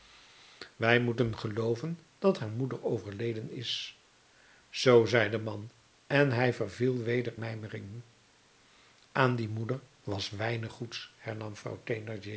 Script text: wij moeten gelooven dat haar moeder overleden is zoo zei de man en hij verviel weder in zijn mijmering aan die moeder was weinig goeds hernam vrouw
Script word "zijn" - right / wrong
wrong